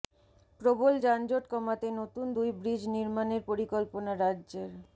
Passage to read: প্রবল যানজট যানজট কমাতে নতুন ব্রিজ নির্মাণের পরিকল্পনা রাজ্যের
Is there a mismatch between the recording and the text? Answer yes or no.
yes